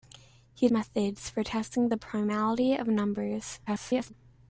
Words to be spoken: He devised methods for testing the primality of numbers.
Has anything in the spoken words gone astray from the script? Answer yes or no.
yes